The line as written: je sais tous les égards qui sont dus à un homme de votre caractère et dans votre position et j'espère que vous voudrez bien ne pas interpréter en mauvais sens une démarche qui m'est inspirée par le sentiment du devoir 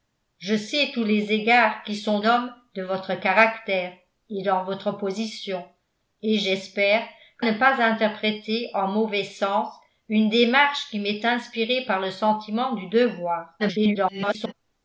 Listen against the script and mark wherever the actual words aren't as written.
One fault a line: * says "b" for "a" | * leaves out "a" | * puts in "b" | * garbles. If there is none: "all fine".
* leaves out "dus à un"
* leaves out "vous voudrez bien"
* garbles